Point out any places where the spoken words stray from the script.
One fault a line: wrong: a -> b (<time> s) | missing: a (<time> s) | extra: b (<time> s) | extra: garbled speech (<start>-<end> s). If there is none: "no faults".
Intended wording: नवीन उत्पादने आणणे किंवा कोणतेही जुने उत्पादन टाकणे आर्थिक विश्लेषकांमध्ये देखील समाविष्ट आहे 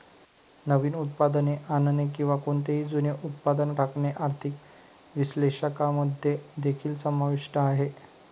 no faults